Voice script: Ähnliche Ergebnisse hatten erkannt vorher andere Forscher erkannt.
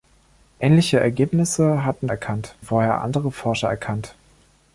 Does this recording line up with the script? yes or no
yes